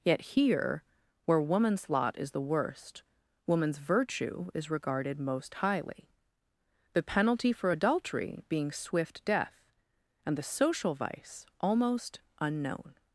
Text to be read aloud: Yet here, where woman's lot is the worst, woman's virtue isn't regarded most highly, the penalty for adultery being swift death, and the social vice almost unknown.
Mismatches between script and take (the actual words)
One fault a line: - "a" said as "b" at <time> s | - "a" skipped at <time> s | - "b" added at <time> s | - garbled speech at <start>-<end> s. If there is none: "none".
- "isn't" said as "is" at 4.5 s